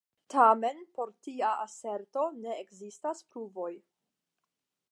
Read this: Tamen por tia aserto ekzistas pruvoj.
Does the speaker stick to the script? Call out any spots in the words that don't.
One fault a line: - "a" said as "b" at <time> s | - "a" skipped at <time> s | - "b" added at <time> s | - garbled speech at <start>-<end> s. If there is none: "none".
- "ne" added at 2.4 s